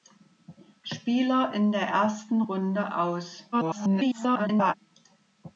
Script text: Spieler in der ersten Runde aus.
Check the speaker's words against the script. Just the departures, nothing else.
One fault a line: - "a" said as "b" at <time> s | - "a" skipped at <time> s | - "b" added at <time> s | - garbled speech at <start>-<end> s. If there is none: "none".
- garbled speech at 3.5-4.7 s